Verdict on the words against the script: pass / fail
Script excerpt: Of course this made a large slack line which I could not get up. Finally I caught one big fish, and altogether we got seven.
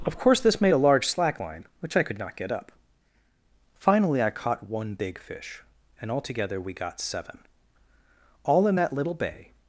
fail